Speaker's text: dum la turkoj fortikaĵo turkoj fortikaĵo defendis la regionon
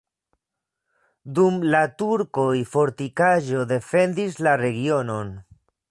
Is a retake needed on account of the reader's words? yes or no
yes